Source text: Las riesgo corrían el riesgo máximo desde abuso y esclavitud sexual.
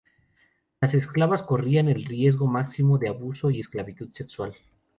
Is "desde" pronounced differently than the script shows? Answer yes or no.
yes